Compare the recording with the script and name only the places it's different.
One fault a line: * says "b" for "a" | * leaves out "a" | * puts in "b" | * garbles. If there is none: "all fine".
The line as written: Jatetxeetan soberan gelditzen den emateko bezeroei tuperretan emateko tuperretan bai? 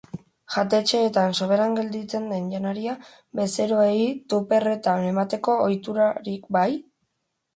* says "janaria" for "emateko"
* says "ohiturarik" for "tuperretan"